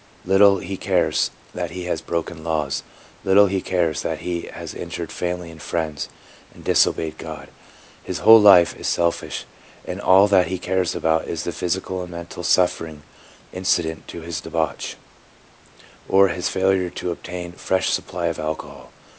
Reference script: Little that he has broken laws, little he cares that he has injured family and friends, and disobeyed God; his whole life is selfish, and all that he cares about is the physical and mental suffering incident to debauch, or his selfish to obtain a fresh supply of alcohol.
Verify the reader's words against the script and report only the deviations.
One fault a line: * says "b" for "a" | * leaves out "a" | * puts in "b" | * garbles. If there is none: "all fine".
* puts in "he cares"
* puts in "his"
* says "failure" for "selfish"